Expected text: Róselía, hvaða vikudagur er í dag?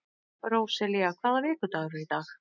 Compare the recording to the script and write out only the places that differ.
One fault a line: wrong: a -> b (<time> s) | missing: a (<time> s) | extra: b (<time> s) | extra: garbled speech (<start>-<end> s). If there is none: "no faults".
no faults